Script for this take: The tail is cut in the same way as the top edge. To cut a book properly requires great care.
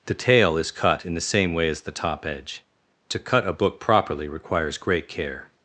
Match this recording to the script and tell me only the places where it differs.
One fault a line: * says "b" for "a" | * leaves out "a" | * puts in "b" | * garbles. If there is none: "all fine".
all fine